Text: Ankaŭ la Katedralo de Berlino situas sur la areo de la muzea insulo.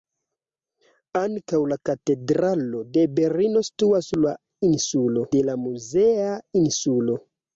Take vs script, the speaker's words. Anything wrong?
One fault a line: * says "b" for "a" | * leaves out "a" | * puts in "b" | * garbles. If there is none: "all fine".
* says "insulo" for "areo"